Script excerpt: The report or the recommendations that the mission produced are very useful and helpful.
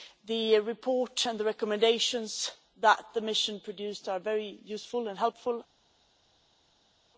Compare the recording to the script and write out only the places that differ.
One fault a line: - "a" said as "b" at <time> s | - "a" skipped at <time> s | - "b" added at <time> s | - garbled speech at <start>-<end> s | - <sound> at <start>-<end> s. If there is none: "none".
- "or" said as "and" at 1.3 s